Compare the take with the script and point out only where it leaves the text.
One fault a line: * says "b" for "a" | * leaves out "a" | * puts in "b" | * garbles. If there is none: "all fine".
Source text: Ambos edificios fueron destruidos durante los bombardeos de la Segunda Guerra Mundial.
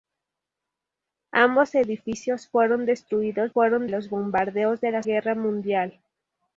* says "fueron" for "durante"
* leaves out "Segunda"